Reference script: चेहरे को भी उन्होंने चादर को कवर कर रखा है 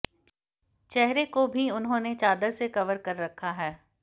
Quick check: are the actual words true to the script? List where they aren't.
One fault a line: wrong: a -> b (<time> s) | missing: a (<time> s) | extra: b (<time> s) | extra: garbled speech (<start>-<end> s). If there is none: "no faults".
wrong: को -> से (2.5 s)